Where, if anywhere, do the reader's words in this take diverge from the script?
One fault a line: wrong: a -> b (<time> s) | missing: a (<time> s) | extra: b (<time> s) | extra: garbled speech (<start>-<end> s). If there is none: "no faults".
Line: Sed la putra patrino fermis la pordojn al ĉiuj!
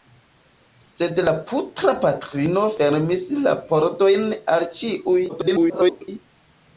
extra: garbled speech (5.3-6.1 s)